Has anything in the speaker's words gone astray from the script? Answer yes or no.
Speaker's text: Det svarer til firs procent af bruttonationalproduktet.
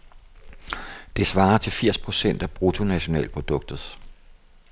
no